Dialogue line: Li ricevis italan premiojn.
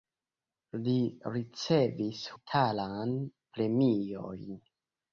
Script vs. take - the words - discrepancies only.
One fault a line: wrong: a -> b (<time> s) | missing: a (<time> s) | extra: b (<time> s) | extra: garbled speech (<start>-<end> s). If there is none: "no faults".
no faults